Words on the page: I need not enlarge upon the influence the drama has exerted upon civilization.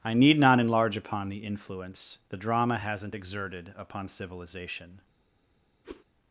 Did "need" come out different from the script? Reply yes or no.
no